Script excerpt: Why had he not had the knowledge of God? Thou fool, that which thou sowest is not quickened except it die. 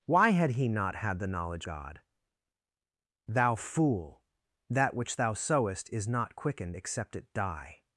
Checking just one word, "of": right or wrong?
wrong